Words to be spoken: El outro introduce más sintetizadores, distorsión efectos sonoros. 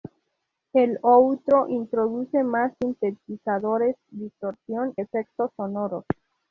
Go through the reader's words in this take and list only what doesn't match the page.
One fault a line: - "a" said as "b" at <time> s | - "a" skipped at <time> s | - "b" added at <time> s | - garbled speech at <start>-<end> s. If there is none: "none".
none